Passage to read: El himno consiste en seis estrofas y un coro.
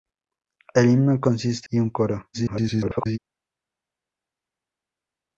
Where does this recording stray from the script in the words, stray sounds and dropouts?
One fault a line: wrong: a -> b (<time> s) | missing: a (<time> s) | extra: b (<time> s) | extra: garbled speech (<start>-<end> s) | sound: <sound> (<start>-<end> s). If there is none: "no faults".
missing: en seis estrofas (1.7 s)
extra: garbled speech (2.3-3.2 s)